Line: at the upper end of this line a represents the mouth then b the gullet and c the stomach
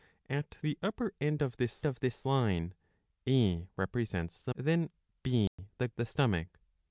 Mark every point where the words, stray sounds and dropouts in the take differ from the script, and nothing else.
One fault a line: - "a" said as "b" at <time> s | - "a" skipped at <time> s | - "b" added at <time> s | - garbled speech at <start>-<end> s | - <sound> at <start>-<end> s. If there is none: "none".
- "of this" added at 1.8 s
- "mouth" skipped at 4.5 s
- dropout at 5.5-5.6 s
- "gullet and c" skipped at 5.9 s